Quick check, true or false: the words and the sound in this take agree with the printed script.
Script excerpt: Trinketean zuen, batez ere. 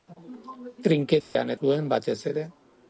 false